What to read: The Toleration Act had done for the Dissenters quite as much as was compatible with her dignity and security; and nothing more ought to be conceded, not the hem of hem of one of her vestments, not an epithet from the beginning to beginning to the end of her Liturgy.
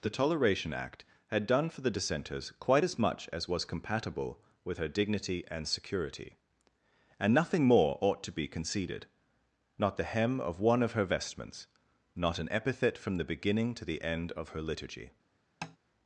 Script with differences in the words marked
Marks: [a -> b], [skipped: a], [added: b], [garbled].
The Toleration Act had done for the Dissenters quite as much as was compatible with her dignity and security; and nothing more ought to be conceded, not the hem of [skipped: hem of] one of her vestments, not an epithet from the beginning to [skipped: beginning to] the end of her Liturgy.